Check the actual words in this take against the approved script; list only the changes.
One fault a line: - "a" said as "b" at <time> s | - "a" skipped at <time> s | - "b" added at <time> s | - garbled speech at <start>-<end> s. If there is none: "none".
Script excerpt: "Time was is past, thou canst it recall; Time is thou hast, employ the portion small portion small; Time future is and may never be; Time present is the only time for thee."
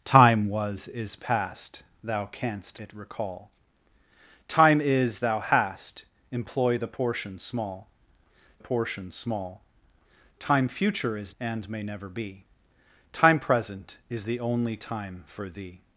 none